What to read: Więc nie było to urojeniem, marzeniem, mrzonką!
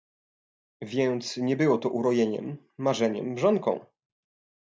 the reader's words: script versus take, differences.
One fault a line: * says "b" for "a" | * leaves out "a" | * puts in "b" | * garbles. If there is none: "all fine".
all fine